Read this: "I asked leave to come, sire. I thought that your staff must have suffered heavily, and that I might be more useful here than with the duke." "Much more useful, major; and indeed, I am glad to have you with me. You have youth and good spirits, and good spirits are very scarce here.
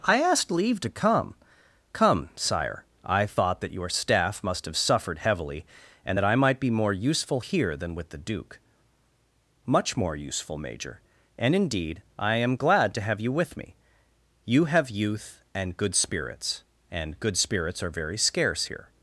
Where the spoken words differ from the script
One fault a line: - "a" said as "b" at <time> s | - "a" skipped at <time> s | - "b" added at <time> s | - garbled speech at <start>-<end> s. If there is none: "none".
- "come" added at 1.9 s